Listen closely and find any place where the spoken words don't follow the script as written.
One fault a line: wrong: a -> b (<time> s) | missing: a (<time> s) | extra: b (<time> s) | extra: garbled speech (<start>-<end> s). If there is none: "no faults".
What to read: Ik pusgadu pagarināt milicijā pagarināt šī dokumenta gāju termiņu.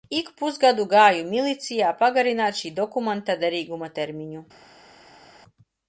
wrong: pagarināt -> gāju (0.9 s)
wrong: gāju -> derīguma (3.5 s)